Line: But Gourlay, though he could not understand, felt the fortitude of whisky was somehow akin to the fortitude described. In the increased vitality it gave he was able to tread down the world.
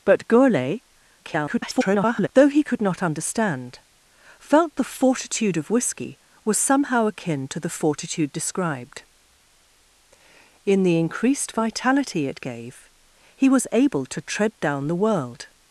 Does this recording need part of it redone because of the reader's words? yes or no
yes